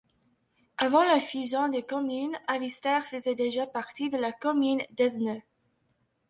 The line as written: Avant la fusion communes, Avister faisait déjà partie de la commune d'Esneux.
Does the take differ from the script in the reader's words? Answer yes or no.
yes